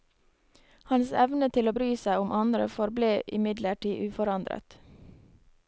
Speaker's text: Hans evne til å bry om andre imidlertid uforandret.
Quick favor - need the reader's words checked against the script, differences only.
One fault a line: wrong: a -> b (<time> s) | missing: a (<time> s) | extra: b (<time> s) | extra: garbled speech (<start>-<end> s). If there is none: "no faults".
extra: seg (2.0 s)
extra: forble (2.8 s)